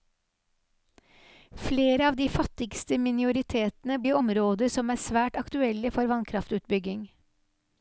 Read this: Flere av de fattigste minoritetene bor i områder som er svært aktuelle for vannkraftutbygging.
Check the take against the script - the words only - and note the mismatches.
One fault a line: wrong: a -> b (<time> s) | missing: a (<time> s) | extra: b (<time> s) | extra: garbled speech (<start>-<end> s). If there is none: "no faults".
missing: bor (4.0 s)